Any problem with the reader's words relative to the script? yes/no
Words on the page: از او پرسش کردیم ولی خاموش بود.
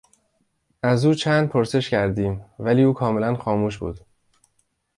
yes